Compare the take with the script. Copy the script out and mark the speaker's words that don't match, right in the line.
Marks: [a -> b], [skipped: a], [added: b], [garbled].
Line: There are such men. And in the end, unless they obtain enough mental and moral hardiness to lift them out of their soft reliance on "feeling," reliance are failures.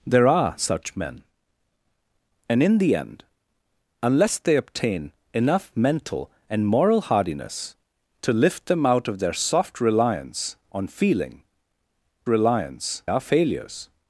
There are such men. And in the end, unless they obtain enough mental and moral hardiness to lift them out of their soft reliance on "feeling," reliance are failures.